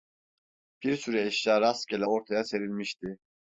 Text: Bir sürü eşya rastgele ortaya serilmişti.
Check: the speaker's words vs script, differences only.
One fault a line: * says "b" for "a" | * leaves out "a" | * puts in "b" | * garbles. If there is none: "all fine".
all fine